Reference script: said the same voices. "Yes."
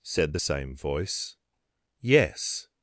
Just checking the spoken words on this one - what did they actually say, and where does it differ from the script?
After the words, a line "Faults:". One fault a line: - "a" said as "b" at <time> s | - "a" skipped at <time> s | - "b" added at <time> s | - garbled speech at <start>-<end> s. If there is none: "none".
said the same voice. "Yes."
Faults:
- "voices" said as "voice" at 0.7 s